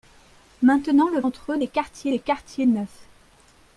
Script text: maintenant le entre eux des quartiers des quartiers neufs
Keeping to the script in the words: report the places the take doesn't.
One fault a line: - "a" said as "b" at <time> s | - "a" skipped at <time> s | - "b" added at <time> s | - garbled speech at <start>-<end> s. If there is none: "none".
none